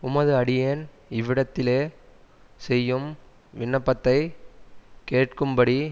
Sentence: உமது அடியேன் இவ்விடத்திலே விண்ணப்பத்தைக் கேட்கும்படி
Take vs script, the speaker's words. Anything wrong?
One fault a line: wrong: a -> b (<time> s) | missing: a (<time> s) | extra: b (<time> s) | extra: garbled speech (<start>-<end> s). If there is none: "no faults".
extra: செய்யும் (2.6 s)